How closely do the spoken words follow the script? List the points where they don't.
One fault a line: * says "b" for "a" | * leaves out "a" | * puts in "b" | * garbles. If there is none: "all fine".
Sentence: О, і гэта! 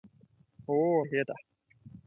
all fine